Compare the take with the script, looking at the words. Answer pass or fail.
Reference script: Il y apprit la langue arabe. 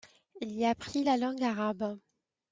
pass